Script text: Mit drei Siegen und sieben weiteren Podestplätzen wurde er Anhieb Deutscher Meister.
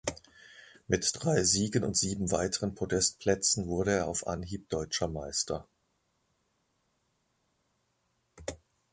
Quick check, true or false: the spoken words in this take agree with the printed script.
false